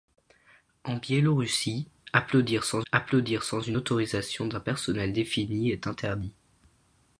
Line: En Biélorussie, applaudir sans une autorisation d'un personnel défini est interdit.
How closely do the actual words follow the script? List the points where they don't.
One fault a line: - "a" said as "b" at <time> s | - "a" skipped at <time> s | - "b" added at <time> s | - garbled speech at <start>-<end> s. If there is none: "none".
- "applaudir sans" added at 2.9 s